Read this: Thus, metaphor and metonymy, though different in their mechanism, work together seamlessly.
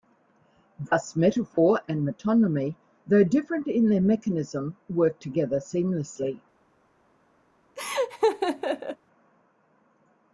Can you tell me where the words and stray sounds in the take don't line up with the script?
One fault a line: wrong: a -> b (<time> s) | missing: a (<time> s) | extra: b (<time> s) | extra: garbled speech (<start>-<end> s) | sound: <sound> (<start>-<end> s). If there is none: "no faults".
sound: laugh (7.8-9.0 s)